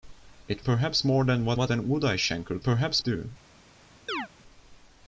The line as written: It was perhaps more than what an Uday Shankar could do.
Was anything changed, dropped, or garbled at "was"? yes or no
yes